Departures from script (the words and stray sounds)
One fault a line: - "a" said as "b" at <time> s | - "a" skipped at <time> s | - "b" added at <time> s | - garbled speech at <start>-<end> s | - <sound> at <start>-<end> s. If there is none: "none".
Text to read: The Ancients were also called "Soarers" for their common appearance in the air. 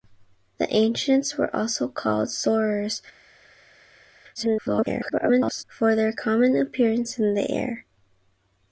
- garbled speech at 4.3-5.6 s